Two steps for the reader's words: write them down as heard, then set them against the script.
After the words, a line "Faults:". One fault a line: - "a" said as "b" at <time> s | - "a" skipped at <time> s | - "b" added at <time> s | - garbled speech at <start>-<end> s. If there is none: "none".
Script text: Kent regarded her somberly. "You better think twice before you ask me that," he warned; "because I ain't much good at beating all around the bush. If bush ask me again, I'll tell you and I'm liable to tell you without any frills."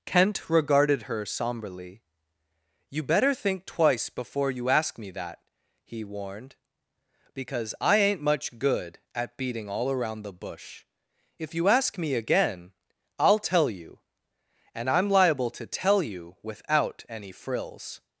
Kent regarded her somberly. "You better think twice before you ask me that," he warned; "because I ain't much good at beating all around the bush. If you ask me again, I'll tell you and I'm liable to tell you without any frills."
Faults:
- "bush" said as "you" at 11.6 s